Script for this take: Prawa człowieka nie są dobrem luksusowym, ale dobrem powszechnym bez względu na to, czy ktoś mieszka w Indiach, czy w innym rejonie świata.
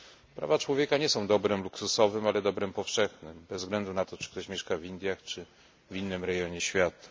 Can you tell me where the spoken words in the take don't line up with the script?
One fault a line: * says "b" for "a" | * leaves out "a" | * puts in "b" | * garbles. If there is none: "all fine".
all fine